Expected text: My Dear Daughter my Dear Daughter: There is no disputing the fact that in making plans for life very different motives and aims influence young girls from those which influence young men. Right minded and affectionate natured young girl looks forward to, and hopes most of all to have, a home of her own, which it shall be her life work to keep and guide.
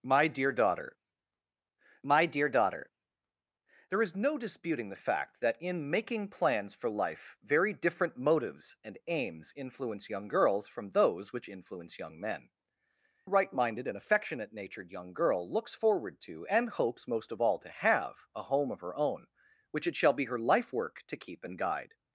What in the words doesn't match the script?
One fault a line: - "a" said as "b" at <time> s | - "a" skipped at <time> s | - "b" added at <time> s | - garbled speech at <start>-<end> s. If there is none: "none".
none